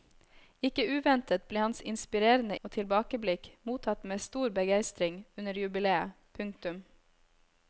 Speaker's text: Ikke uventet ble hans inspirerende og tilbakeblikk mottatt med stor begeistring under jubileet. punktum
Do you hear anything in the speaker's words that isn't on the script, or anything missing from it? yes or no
no